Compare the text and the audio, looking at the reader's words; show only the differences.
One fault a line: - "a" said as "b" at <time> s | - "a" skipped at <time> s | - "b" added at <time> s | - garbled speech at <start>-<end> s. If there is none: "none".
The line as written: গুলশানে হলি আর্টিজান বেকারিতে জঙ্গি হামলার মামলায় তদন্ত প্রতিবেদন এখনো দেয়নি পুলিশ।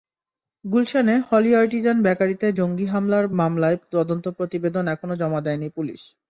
- "জমা" added at 5.2 s